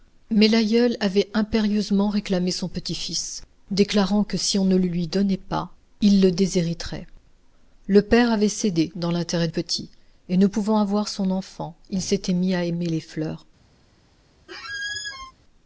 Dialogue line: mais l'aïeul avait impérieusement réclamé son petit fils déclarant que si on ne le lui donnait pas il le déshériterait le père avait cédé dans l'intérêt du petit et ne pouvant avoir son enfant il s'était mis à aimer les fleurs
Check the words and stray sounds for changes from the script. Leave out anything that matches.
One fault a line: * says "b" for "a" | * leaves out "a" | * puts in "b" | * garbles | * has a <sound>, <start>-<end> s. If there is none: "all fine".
* leaves out "du"
* has a squeak, 14.5-15.3 s